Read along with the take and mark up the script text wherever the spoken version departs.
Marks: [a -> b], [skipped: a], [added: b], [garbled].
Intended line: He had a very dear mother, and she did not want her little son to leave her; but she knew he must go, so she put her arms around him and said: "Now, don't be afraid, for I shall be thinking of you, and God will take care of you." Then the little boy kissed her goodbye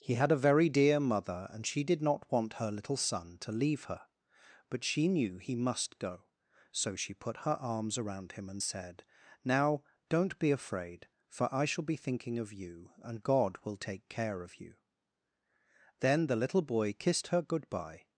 He had a very dear mother, and she did not want her little son to leave her; but she knew he must go, so she put her arms around him and said: "Now, don't be afraid, for I shall be thinking of you, and God will take care of you." Then the little boy kissed her goodbye